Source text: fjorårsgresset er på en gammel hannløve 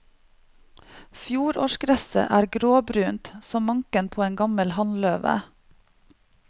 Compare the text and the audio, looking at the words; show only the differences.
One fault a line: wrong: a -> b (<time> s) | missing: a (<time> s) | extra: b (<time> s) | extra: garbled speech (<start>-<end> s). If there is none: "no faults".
extra: gråbrunt som manken (2.6 s)